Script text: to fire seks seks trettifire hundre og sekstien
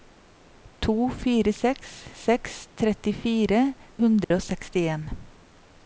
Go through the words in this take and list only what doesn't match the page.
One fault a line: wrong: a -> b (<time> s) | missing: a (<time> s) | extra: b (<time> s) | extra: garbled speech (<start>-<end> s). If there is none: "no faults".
no faults